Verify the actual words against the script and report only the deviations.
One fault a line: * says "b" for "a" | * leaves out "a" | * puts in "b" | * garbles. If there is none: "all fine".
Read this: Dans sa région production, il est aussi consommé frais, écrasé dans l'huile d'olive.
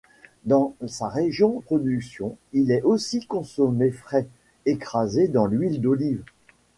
all fine